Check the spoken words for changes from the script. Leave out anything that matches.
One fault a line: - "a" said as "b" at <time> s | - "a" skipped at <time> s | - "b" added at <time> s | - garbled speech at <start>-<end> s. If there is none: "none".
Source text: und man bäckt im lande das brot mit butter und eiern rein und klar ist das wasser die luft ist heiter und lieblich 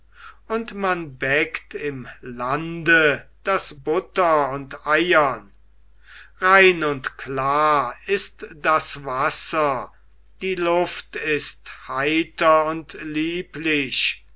- "brot mit" skipped at 3.8 s